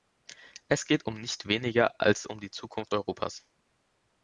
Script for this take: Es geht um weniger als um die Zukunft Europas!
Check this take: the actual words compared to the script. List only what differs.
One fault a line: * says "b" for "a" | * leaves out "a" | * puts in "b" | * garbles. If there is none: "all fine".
* puts in "nicht"